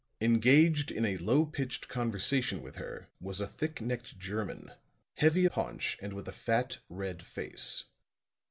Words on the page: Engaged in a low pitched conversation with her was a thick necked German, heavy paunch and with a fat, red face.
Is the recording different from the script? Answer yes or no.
no